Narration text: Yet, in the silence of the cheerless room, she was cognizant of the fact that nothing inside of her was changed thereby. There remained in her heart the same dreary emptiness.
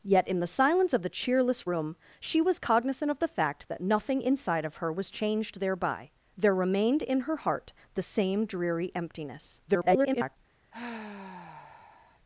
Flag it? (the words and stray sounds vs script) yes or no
yes